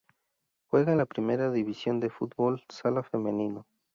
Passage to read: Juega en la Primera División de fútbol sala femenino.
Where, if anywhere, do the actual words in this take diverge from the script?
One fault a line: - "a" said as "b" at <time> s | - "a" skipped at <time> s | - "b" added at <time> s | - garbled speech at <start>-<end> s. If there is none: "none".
none